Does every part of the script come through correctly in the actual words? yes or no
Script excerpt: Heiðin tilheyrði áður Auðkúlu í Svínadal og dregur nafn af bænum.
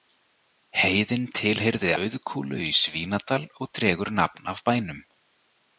no